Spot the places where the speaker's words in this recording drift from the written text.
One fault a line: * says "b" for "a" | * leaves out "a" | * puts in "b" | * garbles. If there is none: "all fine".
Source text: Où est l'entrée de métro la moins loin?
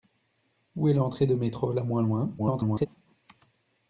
* garbles